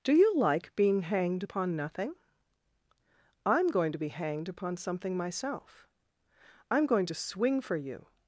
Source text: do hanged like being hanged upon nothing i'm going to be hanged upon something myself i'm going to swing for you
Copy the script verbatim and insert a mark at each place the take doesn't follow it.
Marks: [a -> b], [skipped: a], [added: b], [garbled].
do [hanged -> you] like being hanged upon nothing i'm going to be hanged upon something myself i'm going to swing for you